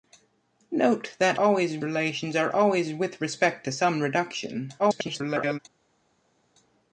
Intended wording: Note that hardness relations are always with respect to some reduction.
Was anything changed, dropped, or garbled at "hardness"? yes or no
yes